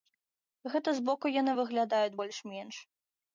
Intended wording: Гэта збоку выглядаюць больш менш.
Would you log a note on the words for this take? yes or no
yes